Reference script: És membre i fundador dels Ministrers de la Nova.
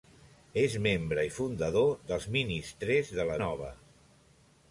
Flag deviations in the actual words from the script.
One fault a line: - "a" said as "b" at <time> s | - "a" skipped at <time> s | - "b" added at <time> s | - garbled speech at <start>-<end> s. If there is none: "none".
none